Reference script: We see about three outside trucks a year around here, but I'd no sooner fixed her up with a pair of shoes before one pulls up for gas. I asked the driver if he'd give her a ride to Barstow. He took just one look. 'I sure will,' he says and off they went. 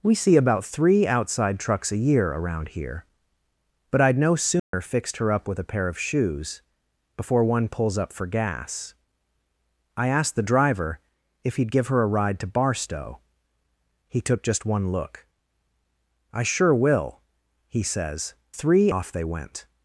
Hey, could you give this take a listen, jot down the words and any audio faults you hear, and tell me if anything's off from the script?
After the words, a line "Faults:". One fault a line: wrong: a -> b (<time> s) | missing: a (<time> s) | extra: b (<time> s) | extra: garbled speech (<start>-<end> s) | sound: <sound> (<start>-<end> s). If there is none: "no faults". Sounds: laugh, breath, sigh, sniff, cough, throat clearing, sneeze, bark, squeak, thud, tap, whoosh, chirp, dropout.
We see about three outside trucks a year around here, but I'd no sooner fixed her up with a pair of shoes before one pulls up for gas. I asked the driver if he'd give her a ride to Barstow. He took just one look. 'I sure will,' he says three off they went.
Faults:
sound: dropout (4.6-4.7 s)
wrong: and -> three (18.5 s)